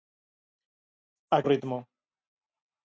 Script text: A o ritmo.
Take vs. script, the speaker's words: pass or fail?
pass